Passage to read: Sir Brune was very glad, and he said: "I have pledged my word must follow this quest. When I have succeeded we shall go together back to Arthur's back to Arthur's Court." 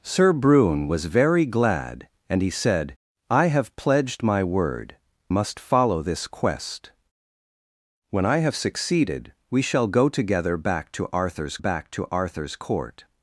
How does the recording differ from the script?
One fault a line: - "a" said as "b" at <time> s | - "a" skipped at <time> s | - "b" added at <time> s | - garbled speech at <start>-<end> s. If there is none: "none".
none